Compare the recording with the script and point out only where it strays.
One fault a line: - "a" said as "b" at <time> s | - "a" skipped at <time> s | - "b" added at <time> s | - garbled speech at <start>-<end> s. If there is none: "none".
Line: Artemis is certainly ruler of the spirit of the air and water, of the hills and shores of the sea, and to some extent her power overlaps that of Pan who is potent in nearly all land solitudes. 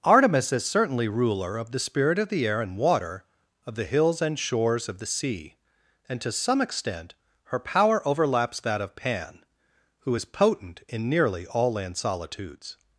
none